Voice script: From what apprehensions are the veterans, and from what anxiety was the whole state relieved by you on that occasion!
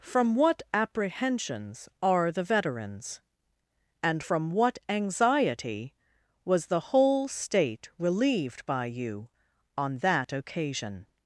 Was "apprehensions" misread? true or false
false